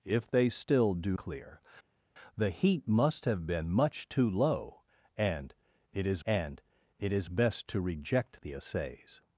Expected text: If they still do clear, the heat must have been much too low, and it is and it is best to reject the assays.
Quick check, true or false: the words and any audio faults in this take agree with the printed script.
true